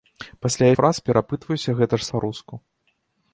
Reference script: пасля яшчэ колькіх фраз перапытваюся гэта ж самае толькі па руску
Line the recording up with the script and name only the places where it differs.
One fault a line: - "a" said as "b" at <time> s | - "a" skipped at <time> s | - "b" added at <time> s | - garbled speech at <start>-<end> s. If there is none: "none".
- "яшчэ колькіх" skipped at 0.7 s
- "самае толькі" skipped at 2.1 s